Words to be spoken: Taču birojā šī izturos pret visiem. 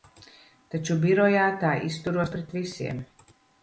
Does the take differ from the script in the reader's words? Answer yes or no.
yes